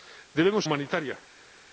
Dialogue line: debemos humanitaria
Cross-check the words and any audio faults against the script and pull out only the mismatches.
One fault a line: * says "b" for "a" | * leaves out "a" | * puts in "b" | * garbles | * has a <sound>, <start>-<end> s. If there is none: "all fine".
all fine